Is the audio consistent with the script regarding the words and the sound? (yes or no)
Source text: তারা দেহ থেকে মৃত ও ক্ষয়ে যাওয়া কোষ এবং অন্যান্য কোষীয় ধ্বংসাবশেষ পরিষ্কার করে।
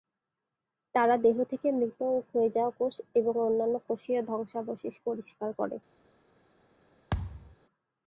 no